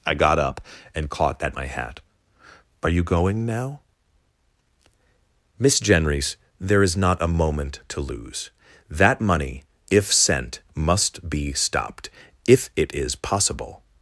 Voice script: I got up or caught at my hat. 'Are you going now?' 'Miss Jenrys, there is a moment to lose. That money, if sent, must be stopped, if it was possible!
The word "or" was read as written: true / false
false